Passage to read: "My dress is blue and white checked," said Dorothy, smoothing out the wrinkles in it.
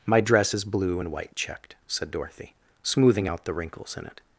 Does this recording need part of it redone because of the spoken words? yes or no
no